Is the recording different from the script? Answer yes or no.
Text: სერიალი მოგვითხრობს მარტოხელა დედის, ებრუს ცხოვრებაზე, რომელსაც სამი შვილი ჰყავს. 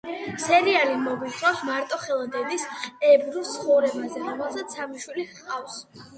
no